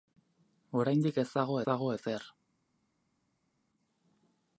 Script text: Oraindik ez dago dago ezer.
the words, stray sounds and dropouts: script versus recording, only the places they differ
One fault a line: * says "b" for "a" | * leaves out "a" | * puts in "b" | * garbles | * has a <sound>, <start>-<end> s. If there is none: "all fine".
all fine